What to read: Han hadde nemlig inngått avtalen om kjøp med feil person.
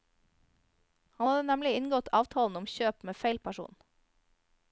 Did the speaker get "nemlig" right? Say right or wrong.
right